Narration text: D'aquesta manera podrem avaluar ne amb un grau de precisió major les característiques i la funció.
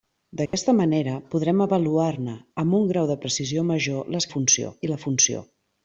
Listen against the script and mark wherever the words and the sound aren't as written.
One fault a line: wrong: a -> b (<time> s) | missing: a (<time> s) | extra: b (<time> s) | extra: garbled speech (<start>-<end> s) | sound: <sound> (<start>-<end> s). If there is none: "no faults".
sound: dropout (0.5-0.5 s)
wrong: característiques -> funció (4.4 s)